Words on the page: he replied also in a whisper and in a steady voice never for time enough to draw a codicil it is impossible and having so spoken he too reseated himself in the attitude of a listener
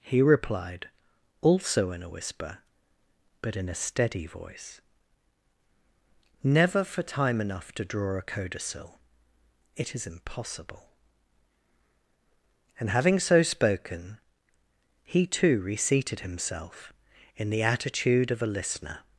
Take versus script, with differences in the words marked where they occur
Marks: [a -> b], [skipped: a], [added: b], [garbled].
he replied also in a whisper [and -> but] in a steady voice never for time enough to draw a codicil it is impossible and having so spoken he too reseated himself in the attitude of a listener